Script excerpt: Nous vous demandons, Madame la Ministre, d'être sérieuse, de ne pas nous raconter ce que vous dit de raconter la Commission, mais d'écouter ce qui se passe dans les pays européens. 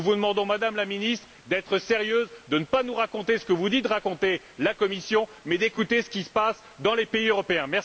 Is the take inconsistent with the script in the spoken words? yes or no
no